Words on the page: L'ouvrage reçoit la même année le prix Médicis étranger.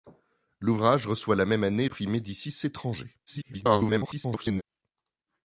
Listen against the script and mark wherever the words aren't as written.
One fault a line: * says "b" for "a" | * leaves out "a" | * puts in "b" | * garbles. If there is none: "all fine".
* leaves out "le"
* garbles